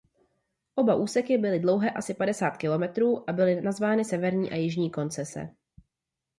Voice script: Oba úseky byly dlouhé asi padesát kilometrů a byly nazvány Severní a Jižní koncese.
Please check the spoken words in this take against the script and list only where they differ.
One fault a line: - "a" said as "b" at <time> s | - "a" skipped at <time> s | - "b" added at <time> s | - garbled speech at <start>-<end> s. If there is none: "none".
none